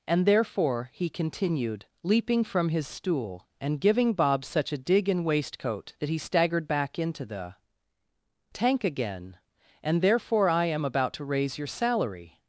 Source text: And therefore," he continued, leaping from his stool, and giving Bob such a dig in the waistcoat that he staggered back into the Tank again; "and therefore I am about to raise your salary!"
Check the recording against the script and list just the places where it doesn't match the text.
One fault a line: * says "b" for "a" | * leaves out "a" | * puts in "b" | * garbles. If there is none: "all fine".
* leaves out "the"